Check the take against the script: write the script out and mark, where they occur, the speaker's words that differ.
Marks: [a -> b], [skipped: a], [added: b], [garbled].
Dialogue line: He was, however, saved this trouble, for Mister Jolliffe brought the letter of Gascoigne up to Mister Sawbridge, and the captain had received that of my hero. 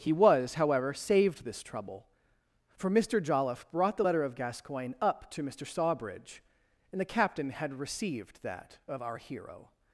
He was, however, saved this trouble, for Mister Jolliffe brought the letter of Gascoigne up to Mister Sawbridge, and the captain had received that of [my -> our] hero.